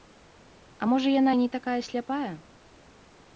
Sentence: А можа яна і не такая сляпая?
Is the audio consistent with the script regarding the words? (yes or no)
yes